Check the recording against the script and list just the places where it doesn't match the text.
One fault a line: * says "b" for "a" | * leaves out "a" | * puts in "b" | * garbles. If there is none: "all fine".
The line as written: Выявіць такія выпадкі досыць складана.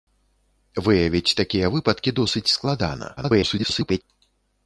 * garbles